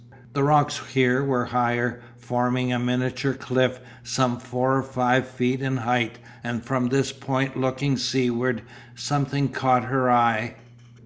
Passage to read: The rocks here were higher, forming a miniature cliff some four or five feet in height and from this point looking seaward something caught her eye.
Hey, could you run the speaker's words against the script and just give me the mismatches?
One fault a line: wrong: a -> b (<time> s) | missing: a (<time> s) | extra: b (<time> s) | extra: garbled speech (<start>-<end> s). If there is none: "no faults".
no faults